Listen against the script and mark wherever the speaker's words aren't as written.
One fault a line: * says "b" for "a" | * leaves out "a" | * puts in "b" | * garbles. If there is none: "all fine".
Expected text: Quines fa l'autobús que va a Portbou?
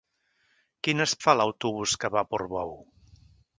all fine